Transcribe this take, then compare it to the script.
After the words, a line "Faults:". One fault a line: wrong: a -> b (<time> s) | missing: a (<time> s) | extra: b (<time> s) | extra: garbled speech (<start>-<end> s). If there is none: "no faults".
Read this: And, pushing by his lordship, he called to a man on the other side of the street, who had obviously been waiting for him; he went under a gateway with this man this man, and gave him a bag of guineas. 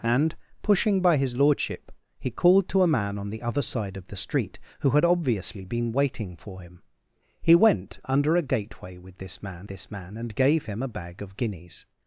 And, pushing by his lordship, he called to a man on the other side of the street, who had obviously been waiting for him; he went under a gateway with this man this man, and gave him a bag of guineas.
Faults:
no faults